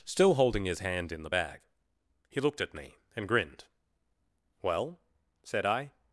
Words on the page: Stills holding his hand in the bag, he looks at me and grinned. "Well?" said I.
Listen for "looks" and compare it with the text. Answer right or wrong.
wrong